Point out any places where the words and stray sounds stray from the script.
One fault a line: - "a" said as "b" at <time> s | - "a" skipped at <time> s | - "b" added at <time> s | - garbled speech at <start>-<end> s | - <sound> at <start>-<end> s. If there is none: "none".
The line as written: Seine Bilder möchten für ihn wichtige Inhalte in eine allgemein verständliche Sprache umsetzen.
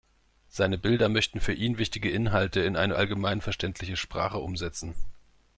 none